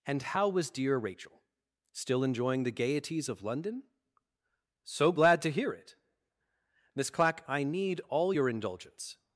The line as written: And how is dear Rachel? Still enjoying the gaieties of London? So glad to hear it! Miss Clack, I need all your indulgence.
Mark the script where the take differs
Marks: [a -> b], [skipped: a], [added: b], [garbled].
And how [is -> was] dear Rachel? Still enjoying the gaieties of London? So glad to hear it! Miss Clack, I need all your indulgence.